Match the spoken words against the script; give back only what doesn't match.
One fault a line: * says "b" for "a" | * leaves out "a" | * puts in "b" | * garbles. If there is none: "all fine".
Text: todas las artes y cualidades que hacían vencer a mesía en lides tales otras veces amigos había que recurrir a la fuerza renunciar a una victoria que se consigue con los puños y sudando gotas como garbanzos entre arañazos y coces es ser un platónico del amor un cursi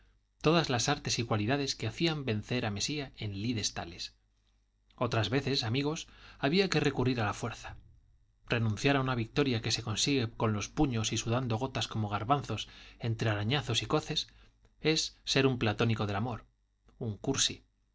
all fine